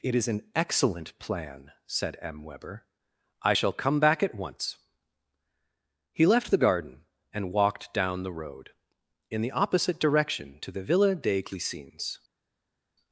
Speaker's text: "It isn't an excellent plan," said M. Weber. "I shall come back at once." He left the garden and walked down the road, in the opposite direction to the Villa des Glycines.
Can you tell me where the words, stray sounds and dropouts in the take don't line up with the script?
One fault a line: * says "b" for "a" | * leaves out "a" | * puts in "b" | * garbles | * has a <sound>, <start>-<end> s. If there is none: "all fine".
* says "is" for "isn't"